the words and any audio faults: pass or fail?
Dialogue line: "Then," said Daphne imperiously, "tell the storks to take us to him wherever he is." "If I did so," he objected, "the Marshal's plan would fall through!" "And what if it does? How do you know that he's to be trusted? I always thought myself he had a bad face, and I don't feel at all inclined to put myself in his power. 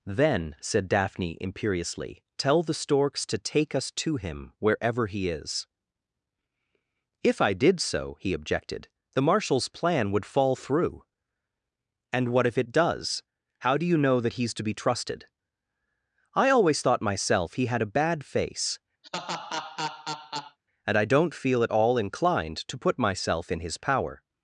fail